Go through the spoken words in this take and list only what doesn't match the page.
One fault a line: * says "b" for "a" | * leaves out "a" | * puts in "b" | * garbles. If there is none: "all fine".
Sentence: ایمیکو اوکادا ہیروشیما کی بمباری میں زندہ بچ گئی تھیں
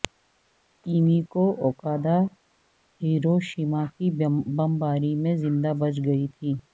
all fine